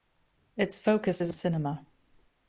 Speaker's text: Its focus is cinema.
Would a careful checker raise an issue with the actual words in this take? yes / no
no